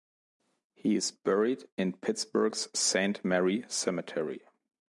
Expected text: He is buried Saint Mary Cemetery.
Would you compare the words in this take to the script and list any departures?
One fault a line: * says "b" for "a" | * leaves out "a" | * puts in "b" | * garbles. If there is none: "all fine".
* puts in "in Pittsburgh's"